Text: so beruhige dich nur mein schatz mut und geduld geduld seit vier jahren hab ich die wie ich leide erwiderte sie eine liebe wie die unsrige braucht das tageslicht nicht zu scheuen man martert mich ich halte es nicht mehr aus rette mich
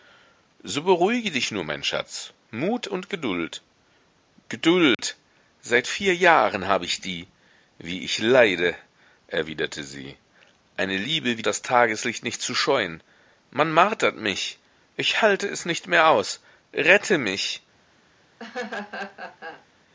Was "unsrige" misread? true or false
true